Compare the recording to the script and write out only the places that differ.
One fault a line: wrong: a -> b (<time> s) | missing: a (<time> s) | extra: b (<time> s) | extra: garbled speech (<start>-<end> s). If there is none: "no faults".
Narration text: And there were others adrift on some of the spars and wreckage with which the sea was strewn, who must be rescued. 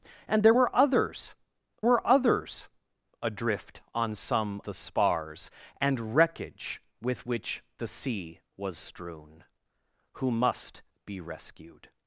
extra: were others (1.8 s)
missing: of (4.6 s)